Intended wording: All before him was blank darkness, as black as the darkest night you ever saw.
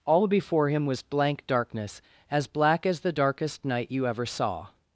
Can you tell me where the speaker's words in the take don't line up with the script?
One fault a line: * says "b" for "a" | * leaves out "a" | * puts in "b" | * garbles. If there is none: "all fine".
all fine